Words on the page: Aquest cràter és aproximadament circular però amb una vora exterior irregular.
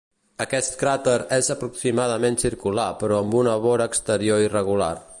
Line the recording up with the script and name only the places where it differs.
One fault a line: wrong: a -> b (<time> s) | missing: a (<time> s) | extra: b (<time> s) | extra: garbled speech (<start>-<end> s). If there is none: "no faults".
no faults